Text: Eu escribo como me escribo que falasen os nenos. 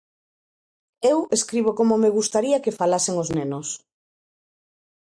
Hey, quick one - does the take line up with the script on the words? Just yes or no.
no